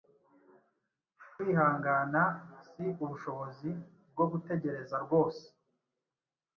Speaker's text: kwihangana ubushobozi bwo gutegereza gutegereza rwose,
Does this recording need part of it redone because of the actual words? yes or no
yes